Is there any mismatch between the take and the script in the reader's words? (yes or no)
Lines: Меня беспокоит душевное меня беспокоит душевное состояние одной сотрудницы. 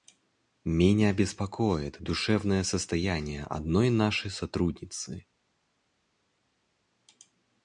yes